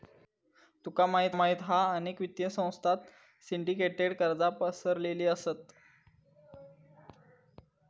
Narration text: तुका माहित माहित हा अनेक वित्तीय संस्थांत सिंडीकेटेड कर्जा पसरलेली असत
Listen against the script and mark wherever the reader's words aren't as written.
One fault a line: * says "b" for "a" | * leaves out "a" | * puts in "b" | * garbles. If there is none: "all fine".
all fine